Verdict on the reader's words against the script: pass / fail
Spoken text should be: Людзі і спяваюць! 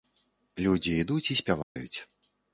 fail